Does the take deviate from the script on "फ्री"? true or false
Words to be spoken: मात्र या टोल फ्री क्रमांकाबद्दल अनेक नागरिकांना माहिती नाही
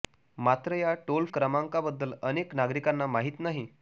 true